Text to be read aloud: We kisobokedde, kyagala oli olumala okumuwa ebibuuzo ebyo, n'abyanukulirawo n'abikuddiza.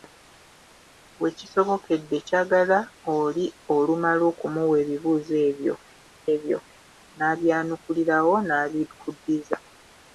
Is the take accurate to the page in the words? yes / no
no